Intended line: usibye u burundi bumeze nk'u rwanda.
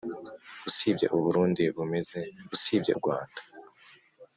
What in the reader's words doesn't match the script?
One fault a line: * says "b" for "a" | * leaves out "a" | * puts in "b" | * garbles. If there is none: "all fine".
* says "usibye" for "nk'u"